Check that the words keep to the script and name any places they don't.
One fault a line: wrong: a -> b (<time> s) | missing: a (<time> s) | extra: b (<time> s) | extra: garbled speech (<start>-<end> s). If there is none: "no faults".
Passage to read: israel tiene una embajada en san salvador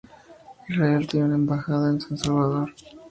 no faults